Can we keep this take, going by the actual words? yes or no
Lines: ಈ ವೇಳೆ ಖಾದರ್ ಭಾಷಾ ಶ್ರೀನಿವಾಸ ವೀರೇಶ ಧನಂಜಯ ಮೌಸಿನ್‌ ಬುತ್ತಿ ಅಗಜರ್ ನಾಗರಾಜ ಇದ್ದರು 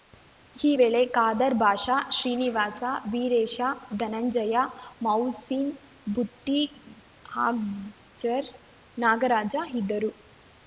yes